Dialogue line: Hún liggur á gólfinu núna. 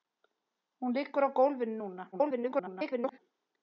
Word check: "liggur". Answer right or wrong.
right